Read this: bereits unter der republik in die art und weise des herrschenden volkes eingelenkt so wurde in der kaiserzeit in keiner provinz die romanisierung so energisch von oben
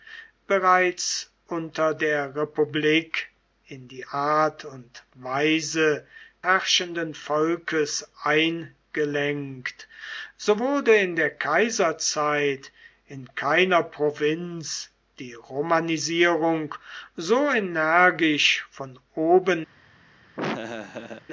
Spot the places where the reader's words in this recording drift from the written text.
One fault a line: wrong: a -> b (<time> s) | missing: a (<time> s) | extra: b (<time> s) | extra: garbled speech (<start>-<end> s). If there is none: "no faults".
missing: des (6.0 s)